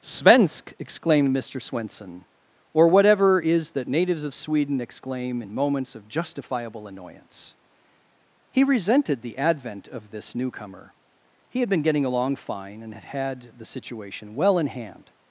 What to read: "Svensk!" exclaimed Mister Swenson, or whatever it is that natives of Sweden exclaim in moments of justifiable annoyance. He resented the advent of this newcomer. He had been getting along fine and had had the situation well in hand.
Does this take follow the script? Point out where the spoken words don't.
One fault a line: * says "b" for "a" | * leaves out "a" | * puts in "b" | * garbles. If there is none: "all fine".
* leaves out "it"